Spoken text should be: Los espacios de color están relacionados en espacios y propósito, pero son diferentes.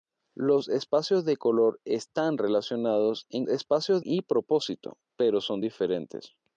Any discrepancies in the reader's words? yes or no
no